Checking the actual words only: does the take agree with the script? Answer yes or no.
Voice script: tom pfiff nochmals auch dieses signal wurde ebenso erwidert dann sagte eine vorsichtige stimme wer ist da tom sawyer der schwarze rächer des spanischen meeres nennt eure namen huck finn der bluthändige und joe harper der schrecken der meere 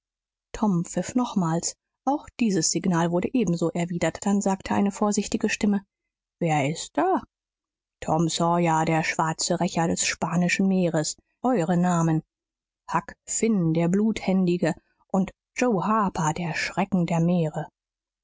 no